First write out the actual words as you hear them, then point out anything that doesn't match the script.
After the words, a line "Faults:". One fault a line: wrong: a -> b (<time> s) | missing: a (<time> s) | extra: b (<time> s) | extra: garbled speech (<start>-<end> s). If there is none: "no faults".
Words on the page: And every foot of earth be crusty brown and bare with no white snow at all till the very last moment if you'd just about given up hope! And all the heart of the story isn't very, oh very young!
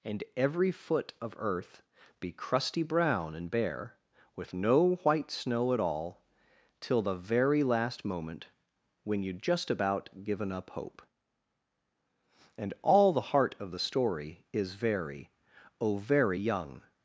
And every foot of earth be crusty brown and bare with no white snow at all till the very last moment when you'd just about given up hope! And all the heart of the story is very, oh very young!
Faults:
wrong: if -> when (9.0 s)
wrong: isn't -> is (14.5 s)